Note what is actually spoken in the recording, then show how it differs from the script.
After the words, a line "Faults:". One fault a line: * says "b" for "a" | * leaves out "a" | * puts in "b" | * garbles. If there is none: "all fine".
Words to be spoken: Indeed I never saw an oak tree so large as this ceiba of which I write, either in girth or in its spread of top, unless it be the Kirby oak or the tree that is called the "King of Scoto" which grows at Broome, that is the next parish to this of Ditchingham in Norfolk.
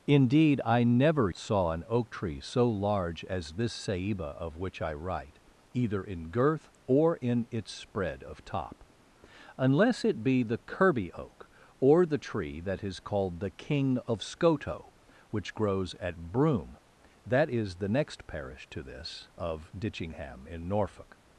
Indeed I never saw an oak tree so large as this ceiba of which I write, either in girth or in its spread of top, unless it be the Kirby oak or the tree that is called the "King of Scoto" which grows at Broome, that is the next parish to this of Ditchingham in Norfolk.
Faults:
all fine